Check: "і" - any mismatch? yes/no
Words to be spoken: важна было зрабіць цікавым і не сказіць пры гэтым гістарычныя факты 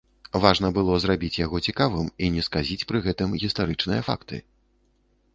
no